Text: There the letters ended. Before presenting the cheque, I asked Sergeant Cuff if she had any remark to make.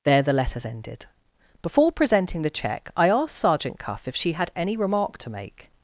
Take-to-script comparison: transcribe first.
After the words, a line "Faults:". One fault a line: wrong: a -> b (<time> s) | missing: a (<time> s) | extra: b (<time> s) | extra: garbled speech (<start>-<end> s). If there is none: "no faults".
There the letters ended. Before presenting the cheque, I asked Sergeant Cuff if she had any remark to make.
Faults:
no faults